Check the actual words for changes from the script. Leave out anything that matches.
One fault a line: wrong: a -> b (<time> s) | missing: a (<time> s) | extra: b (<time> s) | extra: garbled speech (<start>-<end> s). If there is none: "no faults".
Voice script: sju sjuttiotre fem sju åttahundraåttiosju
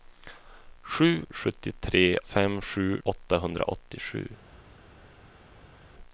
no faults